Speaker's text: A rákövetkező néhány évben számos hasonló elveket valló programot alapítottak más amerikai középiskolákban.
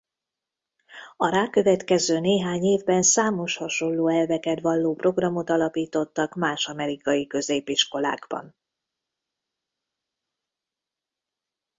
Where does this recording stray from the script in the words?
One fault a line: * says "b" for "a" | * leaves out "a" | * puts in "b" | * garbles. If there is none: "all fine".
all fine